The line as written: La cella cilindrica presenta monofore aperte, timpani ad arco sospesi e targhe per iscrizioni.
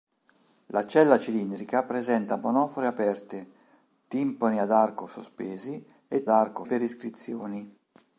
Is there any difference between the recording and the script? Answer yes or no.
yes